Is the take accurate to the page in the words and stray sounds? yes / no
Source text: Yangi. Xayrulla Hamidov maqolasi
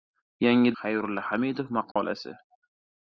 no